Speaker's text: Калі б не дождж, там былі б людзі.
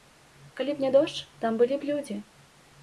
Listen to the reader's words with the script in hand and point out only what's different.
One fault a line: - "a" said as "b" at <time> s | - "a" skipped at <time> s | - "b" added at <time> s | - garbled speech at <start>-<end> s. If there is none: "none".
none